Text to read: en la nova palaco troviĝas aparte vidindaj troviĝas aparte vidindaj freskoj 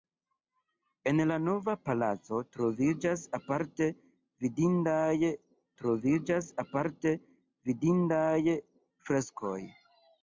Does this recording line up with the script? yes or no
yes